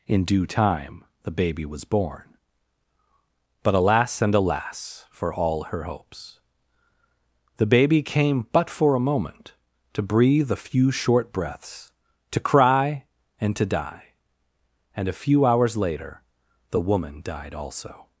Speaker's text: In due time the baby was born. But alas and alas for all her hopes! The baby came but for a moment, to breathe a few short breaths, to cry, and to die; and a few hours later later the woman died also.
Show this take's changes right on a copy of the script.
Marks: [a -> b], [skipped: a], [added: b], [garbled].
In due time the baby was born. But alas and alas for all her hopes! The baby came but for a moment, to breathe a few short breaths, to cry, and to die; and a few hours later [skipped: later] the woman died also.